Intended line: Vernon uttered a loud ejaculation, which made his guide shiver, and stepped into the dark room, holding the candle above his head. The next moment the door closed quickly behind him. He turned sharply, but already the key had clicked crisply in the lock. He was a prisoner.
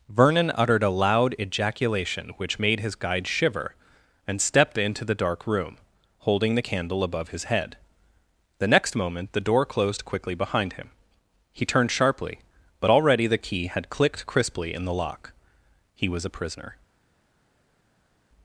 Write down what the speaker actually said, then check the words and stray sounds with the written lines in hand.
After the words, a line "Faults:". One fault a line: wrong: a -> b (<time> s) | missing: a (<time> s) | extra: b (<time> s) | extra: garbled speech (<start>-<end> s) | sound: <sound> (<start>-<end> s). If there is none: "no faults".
Vernon uttered a loud ejaculation, which made his guide shiver, and stepped into the dark room, holding the candle above his head. The next moment the door closed quickly behind him. He turned sharply, but already the key had clicked crisply in the lock. He was a prisoner.
Faults:
no faults